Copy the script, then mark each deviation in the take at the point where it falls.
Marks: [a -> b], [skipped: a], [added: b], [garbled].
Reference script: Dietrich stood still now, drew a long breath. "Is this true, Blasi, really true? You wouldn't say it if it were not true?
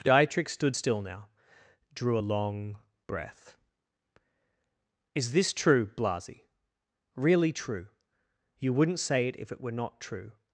Dietrich stood still now, drew a long breath. "Is this true, Blasi, really true? You wouldn't say it if it were not true?